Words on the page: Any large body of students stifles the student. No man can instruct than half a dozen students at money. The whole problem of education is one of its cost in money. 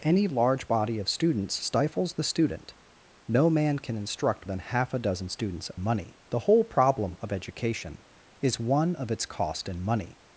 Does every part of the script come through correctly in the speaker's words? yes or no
yes